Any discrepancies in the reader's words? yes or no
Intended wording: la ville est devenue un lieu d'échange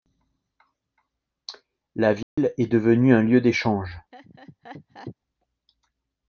no